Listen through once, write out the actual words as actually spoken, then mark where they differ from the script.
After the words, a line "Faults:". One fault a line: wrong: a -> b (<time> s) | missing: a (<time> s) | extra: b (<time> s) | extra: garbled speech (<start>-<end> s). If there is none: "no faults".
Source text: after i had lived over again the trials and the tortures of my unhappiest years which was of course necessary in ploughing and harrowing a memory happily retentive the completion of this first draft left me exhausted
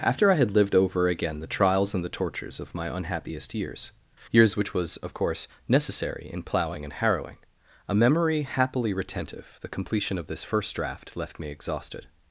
after i had lived over again the trials and the tortures of my unhappiest years years which was of course necessary in ploughing and harrowing a memory happily retentive the completion of this first draft left me exhausted
Faults:
extra: years (4.3 s)